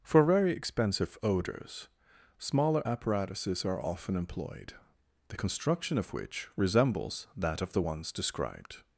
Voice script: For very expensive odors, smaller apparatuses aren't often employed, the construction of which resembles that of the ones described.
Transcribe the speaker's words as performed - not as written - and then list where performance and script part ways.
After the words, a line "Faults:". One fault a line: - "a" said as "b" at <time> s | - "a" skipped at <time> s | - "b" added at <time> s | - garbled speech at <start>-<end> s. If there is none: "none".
For very expensive odors, smaller apparatuses are often employed, the construction of which resembles that of the ones described.
Faults:
- "aren't" said as "are" at 3.6 s